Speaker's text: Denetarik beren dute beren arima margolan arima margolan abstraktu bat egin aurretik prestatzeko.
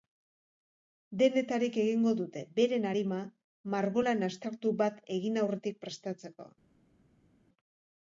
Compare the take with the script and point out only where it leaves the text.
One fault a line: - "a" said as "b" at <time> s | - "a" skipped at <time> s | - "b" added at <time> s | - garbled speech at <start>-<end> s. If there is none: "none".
- "beren" said as "egingo" at 1.8 s
- "arima margolan" skipped at 4.2 s